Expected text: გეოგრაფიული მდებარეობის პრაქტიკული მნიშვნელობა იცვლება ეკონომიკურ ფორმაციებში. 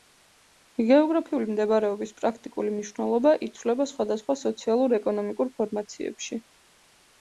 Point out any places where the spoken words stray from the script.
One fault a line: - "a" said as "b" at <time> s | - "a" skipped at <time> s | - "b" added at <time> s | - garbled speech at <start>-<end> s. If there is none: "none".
- "სხვადასხვა სოციალურ" added at 4.0 s